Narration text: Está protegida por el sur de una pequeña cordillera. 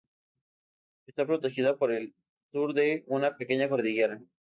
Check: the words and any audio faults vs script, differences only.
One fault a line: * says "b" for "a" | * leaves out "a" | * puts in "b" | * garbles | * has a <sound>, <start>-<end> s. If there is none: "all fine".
all fine